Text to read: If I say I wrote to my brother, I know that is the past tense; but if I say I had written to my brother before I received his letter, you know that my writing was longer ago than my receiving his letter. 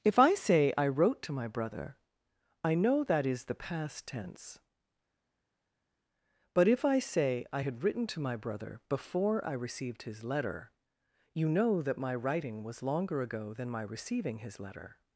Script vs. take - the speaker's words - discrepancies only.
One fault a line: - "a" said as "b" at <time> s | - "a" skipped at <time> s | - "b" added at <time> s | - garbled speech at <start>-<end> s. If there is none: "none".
none